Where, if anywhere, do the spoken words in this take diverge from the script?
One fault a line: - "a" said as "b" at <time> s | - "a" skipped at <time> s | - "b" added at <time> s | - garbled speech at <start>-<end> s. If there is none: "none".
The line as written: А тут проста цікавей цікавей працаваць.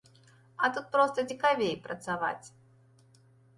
- "цікавей" skipped at 1.7 s